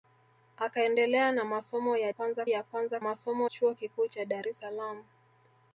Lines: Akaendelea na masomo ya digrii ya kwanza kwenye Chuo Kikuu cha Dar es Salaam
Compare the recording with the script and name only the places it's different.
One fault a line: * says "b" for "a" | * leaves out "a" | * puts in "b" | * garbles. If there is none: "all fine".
* says "kwanza" for "digrii"
* says "masomo" for "kwenye"